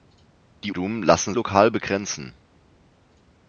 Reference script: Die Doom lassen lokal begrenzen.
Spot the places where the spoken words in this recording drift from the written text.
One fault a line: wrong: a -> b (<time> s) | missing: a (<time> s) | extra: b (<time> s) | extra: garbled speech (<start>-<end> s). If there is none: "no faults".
no faults